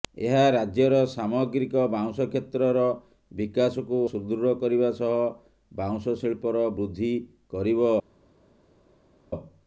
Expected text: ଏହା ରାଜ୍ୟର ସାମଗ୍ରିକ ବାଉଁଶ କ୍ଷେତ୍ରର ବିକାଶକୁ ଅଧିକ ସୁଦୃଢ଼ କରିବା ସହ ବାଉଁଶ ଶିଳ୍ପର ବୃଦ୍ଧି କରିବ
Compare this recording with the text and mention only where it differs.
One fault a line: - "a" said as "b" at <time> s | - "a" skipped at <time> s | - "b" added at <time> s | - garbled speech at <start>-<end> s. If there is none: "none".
- "ଅଧିକ" skipped at 4.0 s